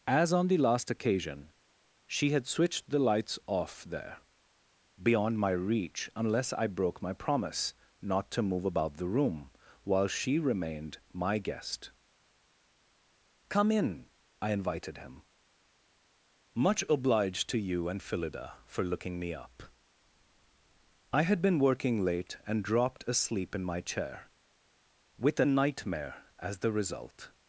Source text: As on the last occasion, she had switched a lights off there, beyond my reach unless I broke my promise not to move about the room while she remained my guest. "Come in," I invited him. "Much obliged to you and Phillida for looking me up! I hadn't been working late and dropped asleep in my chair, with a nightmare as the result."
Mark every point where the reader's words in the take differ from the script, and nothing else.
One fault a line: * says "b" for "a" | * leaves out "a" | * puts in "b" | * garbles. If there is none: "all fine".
* says "the" for "a"
* says "had" for "hadn't"